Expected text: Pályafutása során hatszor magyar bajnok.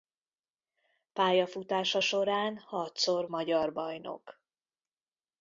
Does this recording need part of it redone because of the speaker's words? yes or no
no